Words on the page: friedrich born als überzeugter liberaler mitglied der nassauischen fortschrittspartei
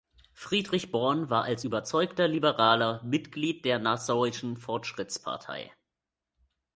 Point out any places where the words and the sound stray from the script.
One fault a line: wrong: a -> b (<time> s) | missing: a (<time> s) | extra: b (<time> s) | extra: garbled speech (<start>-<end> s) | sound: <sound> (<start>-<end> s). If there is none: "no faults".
extra: war (1.3 s)